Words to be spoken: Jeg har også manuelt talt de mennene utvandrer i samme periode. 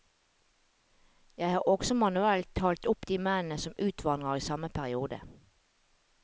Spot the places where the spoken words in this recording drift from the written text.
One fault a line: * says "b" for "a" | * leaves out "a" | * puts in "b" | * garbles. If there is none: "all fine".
* puts in "opp"
* puts in "som"